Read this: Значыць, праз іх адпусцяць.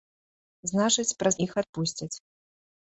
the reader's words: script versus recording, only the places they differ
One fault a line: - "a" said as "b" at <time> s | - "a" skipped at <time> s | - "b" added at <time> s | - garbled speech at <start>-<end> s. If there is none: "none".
none